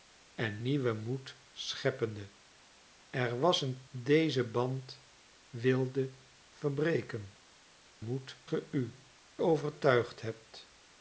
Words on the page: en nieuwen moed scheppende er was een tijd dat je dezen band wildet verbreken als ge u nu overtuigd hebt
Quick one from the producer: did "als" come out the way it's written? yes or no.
no